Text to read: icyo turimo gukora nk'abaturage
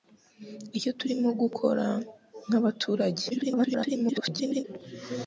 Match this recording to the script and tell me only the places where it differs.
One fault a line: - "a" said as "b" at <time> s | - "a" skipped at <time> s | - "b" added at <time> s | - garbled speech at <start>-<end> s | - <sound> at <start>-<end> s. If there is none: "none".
- garbled speech at 3.3-4.6 s